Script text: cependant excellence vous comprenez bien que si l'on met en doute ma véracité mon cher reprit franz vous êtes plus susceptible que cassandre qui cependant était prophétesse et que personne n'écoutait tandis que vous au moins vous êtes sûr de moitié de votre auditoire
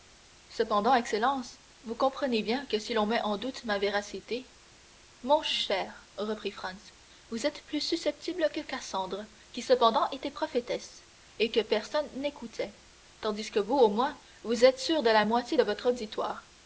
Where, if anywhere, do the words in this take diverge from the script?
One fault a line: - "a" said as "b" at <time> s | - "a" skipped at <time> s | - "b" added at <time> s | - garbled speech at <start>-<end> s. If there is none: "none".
- "la" added at 15.1 s